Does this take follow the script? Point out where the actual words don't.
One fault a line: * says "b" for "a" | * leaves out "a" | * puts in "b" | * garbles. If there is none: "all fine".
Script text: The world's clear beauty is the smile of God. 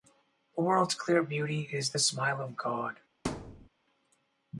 all fine